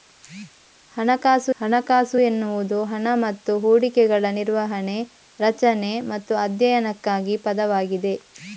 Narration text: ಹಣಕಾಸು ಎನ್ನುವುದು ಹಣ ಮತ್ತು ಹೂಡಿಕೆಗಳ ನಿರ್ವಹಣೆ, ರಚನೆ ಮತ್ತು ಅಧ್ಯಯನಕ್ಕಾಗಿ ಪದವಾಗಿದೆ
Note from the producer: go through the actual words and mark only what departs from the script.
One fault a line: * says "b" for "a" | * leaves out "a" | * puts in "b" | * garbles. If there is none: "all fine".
* puts in "ಹಣಕಾಸು"